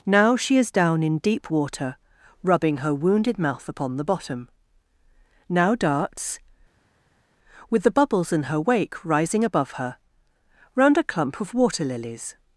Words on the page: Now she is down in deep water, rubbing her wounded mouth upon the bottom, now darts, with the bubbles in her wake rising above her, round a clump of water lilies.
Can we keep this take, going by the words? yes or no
yes